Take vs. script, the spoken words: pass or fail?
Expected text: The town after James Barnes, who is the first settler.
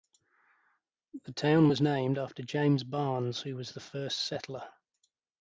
fail